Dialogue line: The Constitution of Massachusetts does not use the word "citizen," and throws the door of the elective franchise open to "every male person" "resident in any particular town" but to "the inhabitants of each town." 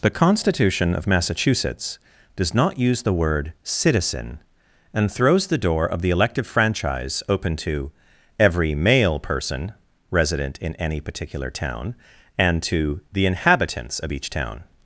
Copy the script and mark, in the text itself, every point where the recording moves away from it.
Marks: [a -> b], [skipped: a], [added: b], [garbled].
The Constitution of Massachusetts does not use the word "citizen," and throws the door of the elective franchise open to "every male person" "resident in any particular town" [but -> and] to "the inhabitants of each town."